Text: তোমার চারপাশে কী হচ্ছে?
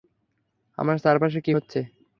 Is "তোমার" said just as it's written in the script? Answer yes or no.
no